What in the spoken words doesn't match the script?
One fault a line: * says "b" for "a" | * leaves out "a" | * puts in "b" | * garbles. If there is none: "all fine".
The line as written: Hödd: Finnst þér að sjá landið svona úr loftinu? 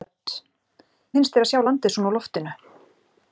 all fine